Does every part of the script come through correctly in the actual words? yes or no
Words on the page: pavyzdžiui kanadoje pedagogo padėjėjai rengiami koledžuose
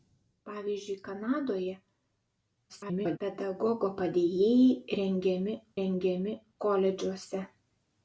no